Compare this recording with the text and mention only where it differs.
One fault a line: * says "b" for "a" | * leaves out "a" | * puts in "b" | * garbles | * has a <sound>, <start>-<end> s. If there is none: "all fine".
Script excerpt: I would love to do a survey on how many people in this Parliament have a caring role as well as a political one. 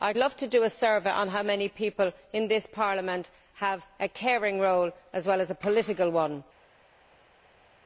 all fine